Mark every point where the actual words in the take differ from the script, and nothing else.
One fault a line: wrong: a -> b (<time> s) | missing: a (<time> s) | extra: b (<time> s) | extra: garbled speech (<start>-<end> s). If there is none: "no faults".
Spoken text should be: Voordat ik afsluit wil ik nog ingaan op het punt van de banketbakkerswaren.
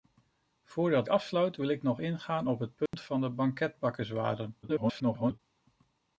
missing: ik (1.1 s)
extra: garbled speech (4.6-5.4 s)